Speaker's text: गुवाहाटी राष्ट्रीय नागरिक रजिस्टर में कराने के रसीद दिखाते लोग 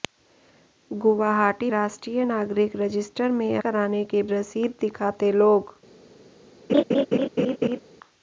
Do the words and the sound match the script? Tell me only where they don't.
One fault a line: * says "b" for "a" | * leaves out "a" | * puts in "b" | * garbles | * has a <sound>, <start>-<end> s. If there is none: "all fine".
* has a laugh, 6.7-7.8 s